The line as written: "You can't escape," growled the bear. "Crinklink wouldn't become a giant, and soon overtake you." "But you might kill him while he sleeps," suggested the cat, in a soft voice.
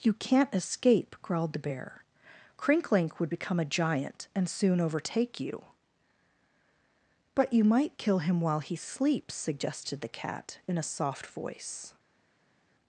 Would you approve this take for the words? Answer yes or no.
no